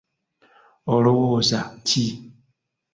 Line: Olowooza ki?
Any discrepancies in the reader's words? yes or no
no